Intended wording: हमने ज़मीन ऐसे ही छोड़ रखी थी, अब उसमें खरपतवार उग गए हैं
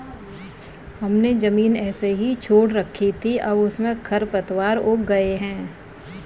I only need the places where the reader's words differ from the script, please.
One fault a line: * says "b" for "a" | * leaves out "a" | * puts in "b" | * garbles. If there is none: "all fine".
all fine